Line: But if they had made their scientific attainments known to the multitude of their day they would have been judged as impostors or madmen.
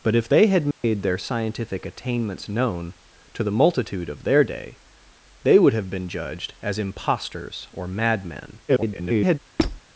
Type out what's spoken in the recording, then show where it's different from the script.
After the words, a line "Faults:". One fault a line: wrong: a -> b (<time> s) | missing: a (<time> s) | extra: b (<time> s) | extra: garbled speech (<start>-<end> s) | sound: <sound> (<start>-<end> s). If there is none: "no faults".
But if they had made their scientific attainments known to the multitude of their day they would have been judged as impostors or madmen. [garbled]
Faults:
sound: dropout (0.7-0.8 s)
extra: garbled speech (8.7-9.4 s)
sound: squeak (9.6-9.8 s)